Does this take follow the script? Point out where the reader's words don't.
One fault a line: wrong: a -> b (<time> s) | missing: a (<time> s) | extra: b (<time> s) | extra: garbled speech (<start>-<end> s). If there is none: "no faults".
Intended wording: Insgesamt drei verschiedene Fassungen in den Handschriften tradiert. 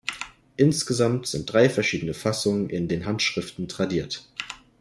extra: sind (1.3 s)